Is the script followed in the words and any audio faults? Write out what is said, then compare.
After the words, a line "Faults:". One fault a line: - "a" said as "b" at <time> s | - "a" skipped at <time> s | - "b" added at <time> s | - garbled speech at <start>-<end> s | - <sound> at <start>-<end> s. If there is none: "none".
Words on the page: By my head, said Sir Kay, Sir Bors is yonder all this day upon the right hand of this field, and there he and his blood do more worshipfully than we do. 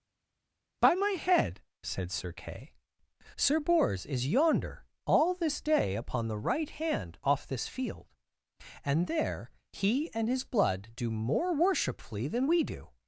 By my head, said Sir Kay, Sir Bors is yonder all this day upon the right hand off this field, and there he and his blood do more worshipfully than we do.
Faults:
- "of" said as "off" at 7.2 s